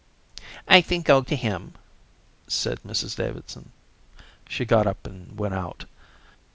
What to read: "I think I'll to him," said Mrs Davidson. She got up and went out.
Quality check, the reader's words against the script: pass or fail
pass